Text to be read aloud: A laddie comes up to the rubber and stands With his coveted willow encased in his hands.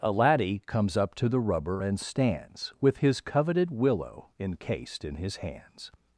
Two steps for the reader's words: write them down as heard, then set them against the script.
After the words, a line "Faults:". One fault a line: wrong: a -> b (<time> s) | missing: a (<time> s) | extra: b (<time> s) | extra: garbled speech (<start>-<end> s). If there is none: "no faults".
A laddie comes up to the rubber and stands With his coveted willow encased in his hands.
Faults:
no faults